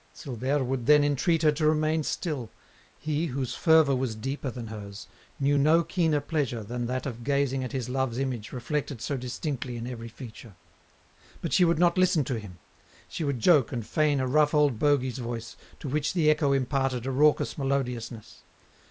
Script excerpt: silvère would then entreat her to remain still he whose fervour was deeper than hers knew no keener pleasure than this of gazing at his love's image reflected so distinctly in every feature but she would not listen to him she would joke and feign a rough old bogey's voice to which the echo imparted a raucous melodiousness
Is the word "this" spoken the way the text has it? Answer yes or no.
no